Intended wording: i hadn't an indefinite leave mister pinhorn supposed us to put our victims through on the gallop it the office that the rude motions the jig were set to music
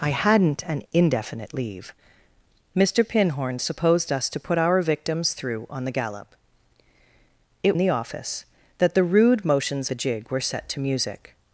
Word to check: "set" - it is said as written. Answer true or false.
true